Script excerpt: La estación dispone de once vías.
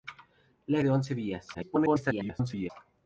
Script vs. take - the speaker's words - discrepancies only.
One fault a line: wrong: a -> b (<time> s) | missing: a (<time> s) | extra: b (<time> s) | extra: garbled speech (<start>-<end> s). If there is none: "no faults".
missing: estación dispone (0.8 s)
extra: garbled speech (1.5-2.7 s)